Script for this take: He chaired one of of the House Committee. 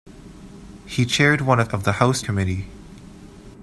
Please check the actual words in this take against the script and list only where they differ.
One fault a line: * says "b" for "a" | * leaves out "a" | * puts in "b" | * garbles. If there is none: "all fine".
all fine